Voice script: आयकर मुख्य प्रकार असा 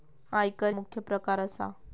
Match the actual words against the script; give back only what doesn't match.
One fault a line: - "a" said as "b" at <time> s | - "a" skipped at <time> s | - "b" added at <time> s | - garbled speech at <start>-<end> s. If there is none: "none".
none